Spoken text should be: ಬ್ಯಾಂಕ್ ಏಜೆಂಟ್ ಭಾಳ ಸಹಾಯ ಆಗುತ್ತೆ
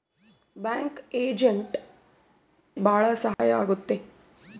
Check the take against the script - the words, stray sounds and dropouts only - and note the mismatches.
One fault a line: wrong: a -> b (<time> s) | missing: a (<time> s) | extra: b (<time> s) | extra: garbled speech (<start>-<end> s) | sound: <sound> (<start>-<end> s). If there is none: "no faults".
sound: dropout (3.3-3.4 s)